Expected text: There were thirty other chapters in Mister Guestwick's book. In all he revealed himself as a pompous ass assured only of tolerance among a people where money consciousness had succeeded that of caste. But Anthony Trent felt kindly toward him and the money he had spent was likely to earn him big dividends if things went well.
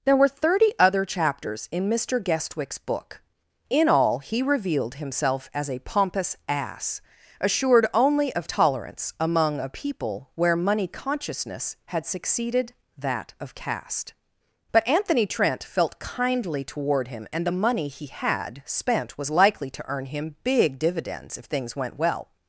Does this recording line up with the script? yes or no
yes